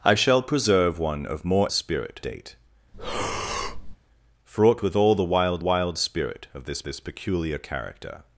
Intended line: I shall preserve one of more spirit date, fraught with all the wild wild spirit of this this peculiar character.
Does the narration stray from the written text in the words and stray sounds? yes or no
yes